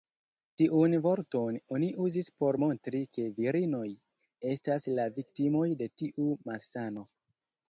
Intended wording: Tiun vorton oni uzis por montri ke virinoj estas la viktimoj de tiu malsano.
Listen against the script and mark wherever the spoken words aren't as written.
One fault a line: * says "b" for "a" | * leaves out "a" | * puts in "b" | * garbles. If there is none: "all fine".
all fine